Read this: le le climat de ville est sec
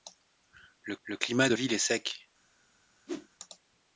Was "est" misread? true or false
false